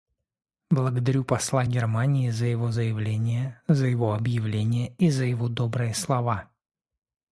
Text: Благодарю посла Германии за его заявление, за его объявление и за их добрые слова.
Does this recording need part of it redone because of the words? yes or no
yes